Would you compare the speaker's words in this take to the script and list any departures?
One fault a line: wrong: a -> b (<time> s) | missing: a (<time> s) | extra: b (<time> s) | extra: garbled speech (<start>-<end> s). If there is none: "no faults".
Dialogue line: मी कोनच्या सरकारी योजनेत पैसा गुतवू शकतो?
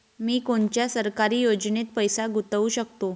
no faults